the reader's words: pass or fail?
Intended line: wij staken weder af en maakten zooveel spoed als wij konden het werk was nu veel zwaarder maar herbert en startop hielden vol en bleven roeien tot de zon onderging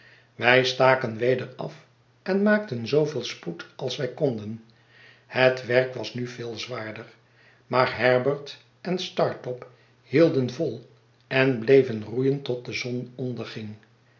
pass